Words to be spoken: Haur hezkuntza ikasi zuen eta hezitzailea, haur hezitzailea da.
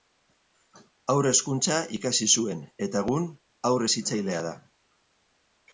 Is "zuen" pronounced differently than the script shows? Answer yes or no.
no